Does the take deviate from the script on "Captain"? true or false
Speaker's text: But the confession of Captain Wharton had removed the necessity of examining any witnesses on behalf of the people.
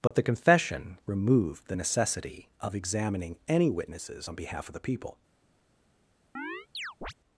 true